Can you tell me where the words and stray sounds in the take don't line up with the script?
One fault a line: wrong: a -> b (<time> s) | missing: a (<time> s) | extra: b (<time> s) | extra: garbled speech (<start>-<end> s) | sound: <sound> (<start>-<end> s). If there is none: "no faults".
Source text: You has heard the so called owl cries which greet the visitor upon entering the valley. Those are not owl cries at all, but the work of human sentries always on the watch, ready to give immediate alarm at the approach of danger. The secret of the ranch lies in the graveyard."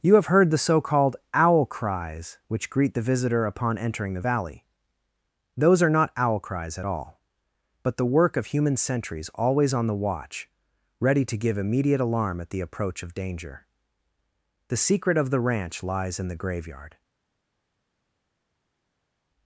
wrong: has -> have (0.1 s)